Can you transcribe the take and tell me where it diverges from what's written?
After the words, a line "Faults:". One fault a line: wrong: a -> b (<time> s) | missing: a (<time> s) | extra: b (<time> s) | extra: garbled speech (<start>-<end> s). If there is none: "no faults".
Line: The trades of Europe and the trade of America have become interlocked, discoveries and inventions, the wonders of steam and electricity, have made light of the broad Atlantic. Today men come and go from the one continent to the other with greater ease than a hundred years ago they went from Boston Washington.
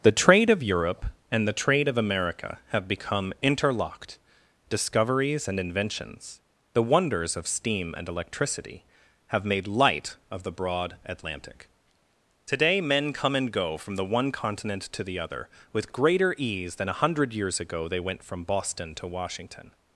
The trade of Europe and the trade of America have become interlocked, discoveries and inventions, the wonders of steam and electricity, have made light of the broad Atlantic. Today men come and go from the one continent to the other with greater ease than a hundred years ago they went from Boston to Washington.
Faults:
wrong: trades -> trade (0.2 s)
extra: to (18.9 s)